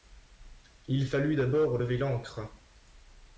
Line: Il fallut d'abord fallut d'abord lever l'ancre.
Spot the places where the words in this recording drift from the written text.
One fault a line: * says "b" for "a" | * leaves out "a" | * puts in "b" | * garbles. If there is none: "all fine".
* leaves out "fallut d'abord"